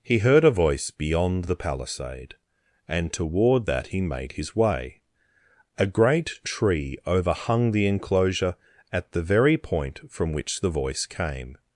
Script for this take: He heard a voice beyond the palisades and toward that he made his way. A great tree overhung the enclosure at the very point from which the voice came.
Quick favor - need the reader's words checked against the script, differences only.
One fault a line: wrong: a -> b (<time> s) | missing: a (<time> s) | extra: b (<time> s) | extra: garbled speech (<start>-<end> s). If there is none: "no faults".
wrong: palisades -> palisade (1.6 s)